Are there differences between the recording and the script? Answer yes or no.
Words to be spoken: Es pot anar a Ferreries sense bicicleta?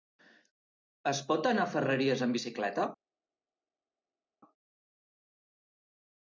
yes